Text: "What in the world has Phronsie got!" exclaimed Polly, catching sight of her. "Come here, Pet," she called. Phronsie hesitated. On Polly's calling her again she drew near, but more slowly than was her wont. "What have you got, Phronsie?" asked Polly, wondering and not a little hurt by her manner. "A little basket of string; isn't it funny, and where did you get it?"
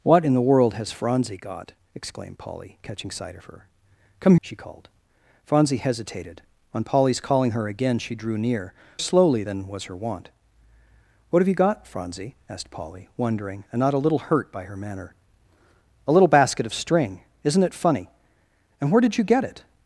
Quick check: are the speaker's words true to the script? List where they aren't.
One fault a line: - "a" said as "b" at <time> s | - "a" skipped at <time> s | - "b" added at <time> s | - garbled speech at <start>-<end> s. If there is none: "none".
- "here Pet" skipped at 4.3 s
- "but more" skipped at 8.7 s